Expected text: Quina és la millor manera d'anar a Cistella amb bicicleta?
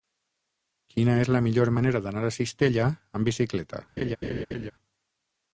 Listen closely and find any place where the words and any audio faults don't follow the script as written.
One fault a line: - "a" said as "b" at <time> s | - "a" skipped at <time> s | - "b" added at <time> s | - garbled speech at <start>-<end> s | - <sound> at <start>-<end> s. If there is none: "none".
- laugh at 4.0-4.7 s